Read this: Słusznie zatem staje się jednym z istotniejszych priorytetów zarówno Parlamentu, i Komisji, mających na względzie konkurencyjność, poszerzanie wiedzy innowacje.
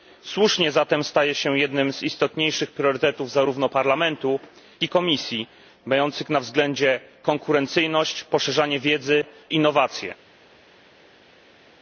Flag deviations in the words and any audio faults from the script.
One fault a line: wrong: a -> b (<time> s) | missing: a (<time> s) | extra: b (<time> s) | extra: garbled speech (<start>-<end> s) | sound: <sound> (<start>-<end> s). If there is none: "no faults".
no faults